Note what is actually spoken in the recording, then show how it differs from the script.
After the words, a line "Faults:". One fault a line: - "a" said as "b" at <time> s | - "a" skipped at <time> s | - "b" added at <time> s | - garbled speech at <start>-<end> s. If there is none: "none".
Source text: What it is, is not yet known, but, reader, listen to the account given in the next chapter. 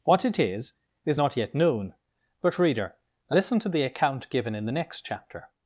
What it is, is not yet known, but, reader, listen to the account given in the next chapter.
Faults:
none